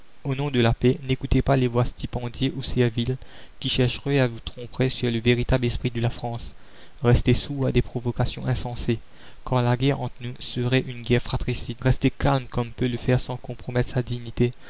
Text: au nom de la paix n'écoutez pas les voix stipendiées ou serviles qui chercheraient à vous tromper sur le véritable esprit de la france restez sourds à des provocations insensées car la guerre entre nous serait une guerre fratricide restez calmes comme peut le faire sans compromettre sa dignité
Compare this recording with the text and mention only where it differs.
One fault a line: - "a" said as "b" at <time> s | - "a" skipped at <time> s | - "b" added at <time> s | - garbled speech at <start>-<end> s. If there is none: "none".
none